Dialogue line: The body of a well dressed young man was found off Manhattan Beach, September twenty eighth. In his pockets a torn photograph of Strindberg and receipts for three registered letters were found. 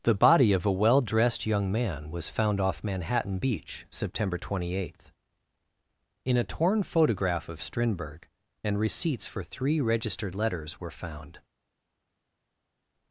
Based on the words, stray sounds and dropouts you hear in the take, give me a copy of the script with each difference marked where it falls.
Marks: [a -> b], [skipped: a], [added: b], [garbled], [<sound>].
The body of a well dressed young man was found off Manhattan Beach, September twenty eighth. In [skipped: his pockets] a torn photograph of Strindberg and receipts for three registered letters were found.